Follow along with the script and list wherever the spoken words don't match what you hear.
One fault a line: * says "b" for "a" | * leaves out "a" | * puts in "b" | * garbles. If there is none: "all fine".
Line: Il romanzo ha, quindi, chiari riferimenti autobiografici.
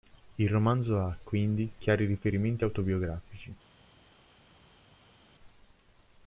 all fine